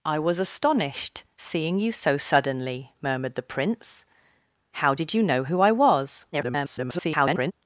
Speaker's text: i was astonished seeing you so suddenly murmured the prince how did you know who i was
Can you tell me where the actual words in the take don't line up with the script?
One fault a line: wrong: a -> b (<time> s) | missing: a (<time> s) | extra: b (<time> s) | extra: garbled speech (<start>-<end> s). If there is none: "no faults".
extra: garbled speech (6.3-7.5 s)